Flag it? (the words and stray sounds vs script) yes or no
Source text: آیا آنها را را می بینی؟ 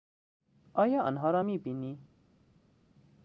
yes